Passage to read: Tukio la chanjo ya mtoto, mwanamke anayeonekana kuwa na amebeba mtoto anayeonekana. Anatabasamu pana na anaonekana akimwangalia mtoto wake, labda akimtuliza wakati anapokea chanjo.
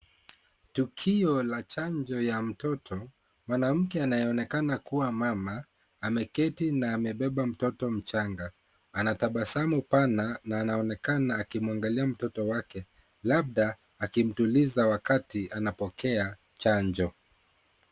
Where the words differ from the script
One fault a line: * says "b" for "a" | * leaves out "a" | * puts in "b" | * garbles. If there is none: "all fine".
* puts in "mama ameketi"
* says "mchanga" for "anayeonekana"